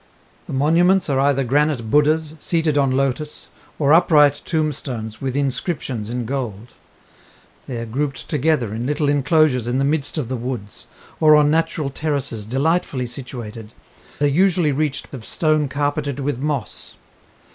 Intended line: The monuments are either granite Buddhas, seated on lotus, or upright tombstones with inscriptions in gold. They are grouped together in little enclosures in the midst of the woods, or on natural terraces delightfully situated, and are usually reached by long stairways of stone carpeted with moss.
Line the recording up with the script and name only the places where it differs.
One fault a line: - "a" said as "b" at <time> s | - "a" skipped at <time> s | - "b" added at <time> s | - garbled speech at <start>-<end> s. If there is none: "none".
- "and" skipped at 13.8 s
- "by long stairways" skipped at 15.1 s